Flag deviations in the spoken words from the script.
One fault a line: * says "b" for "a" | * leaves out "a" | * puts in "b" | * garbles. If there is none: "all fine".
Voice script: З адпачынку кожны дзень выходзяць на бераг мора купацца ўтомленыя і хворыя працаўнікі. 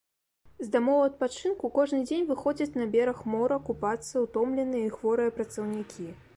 * puts in "дамоў"